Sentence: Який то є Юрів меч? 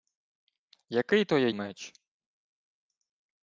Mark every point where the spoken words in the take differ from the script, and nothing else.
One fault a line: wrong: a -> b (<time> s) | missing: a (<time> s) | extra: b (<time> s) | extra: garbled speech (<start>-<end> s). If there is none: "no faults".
missing: Юрів (1.5 s)